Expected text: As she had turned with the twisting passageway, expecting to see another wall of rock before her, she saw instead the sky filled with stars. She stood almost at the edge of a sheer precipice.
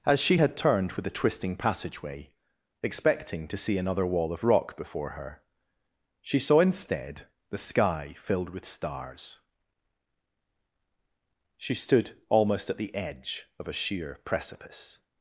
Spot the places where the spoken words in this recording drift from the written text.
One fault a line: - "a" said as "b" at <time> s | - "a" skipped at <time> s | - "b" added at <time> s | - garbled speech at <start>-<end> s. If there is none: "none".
none